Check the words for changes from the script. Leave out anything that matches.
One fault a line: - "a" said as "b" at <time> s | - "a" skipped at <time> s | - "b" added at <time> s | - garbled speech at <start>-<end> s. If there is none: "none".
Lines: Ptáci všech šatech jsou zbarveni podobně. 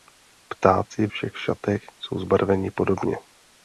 none